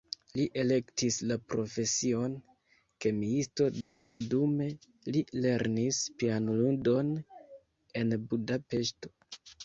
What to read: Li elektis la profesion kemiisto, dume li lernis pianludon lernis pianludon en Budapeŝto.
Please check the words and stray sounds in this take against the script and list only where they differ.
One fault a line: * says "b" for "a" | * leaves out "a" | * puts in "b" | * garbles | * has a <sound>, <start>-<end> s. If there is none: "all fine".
* leaves out "lernis pianludon"